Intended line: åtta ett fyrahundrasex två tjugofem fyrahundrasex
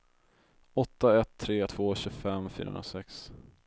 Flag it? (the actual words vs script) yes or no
yes